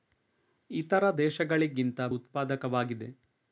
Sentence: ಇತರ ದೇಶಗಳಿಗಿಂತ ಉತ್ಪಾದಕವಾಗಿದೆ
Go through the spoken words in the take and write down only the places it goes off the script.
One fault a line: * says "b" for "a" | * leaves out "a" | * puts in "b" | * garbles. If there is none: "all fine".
all fine